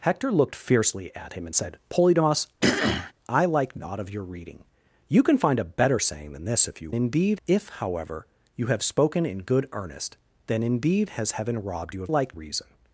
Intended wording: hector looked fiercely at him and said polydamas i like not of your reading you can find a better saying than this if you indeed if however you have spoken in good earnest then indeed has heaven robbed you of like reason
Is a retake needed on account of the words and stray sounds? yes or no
yes